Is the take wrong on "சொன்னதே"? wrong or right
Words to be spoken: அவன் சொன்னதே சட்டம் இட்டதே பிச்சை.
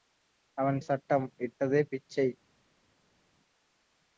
wrong